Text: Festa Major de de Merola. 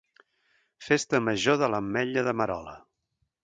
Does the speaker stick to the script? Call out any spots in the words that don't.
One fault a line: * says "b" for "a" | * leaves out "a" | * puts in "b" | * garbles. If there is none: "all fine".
* puts in "l'Ametlla"